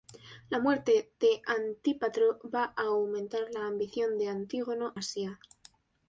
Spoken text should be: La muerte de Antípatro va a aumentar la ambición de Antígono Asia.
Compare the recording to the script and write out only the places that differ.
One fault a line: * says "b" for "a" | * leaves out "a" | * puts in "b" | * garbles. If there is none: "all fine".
all fine